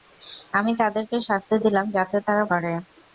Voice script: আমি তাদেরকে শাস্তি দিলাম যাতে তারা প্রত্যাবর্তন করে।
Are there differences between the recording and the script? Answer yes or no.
yes